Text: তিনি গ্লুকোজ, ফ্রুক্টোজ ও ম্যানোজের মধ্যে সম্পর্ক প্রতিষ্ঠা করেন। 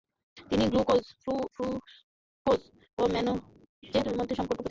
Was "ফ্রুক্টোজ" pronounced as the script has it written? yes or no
yes